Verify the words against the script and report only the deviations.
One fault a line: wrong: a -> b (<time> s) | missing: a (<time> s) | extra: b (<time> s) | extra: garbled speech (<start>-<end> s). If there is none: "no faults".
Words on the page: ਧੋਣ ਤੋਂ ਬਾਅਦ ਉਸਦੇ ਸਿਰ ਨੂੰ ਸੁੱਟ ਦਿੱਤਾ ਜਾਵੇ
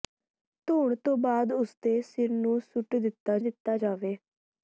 extra: ਦਿੱਤਾ (3.4 s)